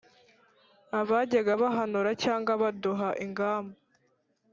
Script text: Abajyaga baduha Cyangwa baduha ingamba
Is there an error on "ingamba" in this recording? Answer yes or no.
no